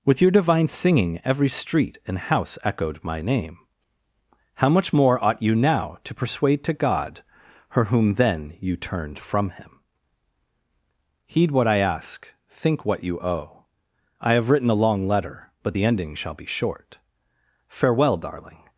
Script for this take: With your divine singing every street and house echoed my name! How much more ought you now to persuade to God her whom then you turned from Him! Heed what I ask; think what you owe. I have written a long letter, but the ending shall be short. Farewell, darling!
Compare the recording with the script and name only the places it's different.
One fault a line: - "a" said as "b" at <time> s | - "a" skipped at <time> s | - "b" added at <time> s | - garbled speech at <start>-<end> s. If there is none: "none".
none